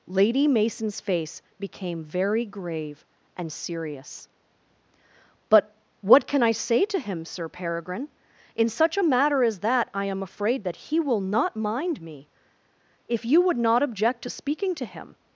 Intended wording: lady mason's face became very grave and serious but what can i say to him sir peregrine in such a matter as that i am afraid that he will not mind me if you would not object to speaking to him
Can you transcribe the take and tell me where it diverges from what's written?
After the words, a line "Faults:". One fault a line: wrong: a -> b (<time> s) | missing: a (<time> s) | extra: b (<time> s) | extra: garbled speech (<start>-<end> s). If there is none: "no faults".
lady mason's face became very grave and serious but what can i say to him sir peregrine in such a matter as that i am afraid that he will not mind me if you would not object to speaking to him
Faults:
no faults